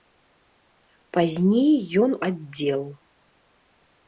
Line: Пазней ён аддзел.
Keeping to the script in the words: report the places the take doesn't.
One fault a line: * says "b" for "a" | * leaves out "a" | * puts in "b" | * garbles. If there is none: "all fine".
all fine